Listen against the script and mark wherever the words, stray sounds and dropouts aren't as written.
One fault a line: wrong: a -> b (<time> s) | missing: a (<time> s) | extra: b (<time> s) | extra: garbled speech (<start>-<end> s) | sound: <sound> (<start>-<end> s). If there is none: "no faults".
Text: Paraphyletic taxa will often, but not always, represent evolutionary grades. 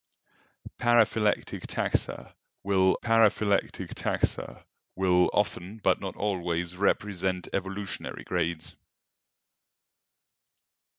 extra: paraphyletic taxa will (3.0 s)